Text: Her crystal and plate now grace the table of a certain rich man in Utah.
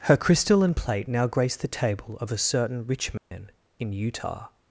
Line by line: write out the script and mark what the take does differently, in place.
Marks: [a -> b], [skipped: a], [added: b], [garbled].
Her crystal and plate now grace the table of a certain rich man in Utah.